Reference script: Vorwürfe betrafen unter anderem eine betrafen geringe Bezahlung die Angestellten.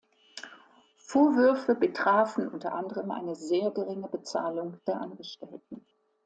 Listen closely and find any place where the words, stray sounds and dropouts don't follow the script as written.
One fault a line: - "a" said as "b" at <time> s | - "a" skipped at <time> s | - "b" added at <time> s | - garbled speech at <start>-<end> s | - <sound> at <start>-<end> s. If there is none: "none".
- "betrafen" said as "sehr" at 3.4 s
- "die" said as "der" at 4.9 s